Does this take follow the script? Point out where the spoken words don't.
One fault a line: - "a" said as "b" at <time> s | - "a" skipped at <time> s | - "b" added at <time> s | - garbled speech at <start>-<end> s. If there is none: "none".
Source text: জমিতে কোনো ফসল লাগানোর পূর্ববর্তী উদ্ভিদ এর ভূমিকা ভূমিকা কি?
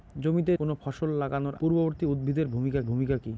none